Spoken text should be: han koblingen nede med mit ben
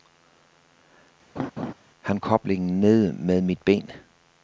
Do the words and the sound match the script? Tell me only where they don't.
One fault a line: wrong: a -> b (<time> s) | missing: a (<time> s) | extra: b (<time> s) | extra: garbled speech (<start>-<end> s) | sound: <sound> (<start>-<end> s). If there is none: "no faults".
sound: laugh (1.4-1.7 s)